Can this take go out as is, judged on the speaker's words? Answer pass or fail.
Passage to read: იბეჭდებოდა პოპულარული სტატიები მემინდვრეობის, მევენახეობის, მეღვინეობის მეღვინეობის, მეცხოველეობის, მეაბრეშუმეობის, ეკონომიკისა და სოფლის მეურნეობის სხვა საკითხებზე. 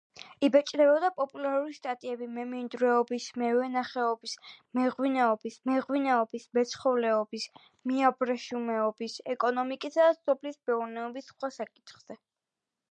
pass